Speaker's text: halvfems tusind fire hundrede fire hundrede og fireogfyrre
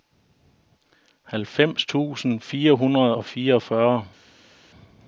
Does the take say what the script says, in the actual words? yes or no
no